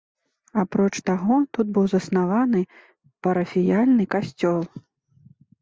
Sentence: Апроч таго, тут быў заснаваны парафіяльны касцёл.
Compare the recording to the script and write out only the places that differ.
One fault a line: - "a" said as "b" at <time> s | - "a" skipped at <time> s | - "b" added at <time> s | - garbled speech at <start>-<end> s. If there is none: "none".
none